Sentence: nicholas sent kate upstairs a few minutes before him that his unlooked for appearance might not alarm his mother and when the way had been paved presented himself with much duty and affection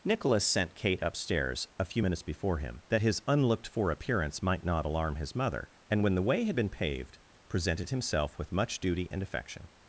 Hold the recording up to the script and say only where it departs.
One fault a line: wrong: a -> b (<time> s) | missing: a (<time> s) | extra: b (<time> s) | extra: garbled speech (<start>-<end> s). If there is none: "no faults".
no faults